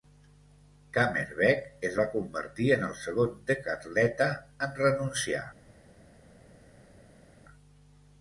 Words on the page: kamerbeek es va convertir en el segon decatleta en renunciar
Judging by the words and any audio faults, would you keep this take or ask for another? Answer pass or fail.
pass